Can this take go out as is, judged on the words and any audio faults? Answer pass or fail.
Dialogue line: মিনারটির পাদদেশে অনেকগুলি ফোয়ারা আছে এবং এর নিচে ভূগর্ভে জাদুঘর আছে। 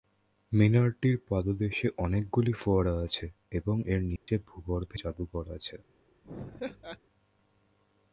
fail